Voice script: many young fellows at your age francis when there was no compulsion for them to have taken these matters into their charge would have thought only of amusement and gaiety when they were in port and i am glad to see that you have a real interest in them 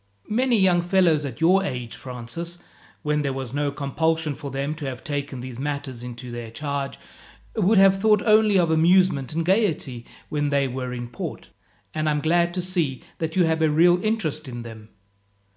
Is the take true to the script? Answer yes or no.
yes